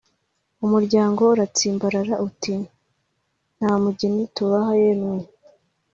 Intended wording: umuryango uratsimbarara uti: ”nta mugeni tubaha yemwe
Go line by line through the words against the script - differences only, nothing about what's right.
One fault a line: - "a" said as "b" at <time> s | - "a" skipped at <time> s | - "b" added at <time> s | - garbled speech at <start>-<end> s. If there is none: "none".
none